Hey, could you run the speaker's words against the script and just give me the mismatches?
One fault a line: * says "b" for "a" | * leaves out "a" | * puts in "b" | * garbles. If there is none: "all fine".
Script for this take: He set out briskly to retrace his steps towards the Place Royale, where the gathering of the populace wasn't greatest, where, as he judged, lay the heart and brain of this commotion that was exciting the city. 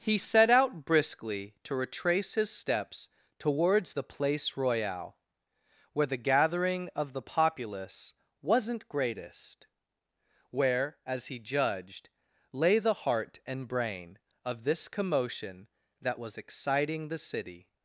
all fine